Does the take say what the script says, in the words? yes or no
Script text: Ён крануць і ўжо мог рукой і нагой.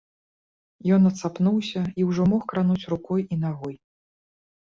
no